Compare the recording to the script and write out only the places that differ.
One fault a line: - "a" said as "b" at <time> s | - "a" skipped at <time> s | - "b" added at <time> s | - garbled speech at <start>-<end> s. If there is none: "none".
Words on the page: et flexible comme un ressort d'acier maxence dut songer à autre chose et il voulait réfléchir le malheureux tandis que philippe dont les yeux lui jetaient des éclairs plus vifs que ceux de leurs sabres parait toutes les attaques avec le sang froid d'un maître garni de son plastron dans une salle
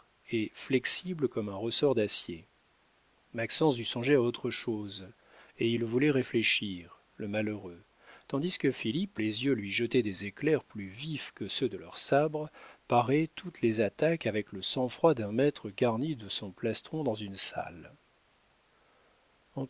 - "dont" skipped at 9.2 s